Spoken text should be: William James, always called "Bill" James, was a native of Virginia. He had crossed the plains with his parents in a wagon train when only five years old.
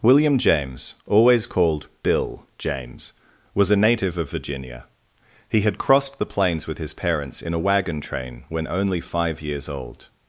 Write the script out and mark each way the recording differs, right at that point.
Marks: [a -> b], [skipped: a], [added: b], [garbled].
William James, always called "Bill" James, was a native of Virginia. He had crossed the plains with his parents in a wagon train when only five years old.